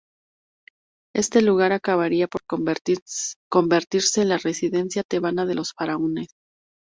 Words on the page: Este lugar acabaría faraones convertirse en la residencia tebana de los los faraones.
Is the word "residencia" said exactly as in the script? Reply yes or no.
yes